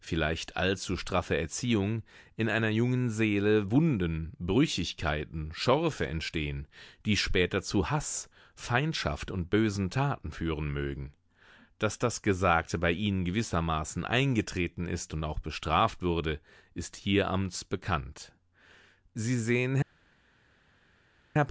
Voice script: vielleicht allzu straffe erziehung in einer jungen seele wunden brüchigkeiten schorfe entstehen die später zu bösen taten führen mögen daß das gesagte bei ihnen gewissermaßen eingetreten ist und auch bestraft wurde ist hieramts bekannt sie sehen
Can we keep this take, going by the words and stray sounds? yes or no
no